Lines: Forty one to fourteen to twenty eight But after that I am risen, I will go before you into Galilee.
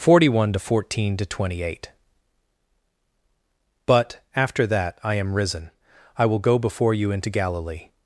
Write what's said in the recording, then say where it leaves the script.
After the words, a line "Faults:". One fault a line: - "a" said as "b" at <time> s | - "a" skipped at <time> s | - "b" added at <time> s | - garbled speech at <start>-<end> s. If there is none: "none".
Forty one to fourteen to twenty eight But after that I am risen, I will go before you into Galilee.
Faults:
none